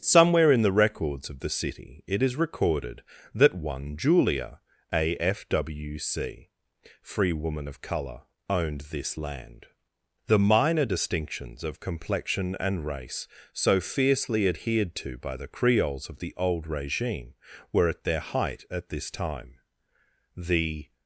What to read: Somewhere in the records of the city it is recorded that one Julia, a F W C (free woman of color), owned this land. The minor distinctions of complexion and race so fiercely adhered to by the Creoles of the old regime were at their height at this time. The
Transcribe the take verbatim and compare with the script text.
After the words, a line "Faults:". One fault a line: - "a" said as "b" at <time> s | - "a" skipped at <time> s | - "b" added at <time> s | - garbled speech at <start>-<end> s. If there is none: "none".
Somewhere in the records of the city it is recorded that one Julia, a F W C (free woman of color), owned this land. The minor distinctions of complexion and race so fiercely adhered to by the Creoles of the old regime were at their height at this time. The
Faults:
none